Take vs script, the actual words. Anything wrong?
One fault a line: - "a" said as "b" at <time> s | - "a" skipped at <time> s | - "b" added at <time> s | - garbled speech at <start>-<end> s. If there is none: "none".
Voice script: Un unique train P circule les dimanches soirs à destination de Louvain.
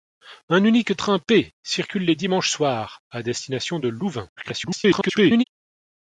- garbled speech at 4.4-5.4 s